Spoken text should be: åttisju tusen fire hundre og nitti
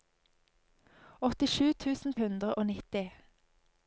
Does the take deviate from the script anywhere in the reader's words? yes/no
yes